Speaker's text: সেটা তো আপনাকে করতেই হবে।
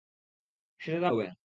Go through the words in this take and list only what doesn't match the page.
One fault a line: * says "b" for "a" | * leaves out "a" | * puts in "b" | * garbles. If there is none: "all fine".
* leaves out "আপনাকে করতেই"